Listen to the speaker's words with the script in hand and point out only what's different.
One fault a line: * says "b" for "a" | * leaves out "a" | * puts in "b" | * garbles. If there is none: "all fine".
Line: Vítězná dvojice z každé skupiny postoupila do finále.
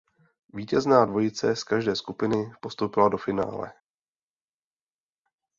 all fine